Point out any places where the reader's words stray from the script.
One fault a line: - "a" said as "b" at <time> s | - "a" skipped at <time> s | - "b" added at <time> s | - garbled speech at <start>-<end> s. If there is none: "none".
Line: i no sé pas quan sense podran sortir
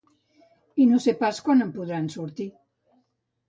- "sense" said as "en" at 1.7 s